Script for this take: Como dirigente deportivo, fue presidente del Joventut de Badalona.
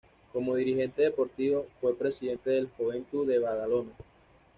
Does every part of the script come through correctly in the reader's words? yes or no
yes